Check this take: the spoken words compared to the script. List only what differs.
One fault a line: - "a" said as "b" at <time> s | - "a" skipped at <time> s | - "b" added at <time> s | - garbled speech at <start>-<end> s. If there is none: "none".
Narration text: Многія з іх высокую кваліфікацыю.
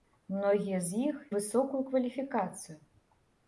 none